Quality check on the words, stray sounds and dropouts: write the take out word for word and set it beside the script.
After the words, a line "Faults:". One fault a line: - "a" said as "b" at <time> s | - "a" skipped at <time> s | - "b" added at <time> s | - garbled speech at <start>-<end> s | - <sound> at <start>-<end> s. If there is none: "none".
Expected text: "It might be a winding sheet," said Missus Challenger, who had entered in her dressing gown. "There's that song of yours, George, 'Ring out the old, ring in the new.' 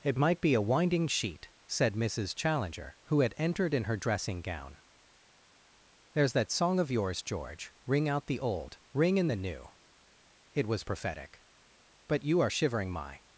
"It might be a winding sheet," said Missus Challenger, who had entered in her dressing gown. "There's that song of yours, George, 'Ring out the old, ring in the new.' It was prophetic. But you are shivering, my
Faults:
- "It was prophetic But you are shivering my" added at 10.5 s